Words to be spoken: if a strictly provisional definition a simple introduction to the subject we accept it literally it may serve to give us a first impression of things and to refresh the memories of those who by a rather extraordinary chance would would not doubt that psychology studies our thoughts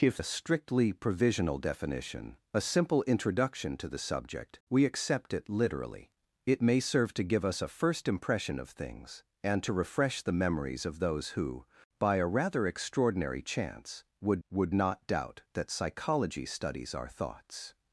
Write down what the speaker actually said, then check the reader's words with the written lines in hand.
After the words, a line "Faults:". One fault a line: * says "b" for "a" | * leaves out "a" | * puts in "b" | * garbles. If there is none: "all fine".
if a strictly provisional definition a simple introduction to the subject we accept it literally it may serve to give us a first impression of things and to refresh the memories of those who by a rather extraordinary chance would would not doubt that psychology studies our thoughts
Faults:
all fine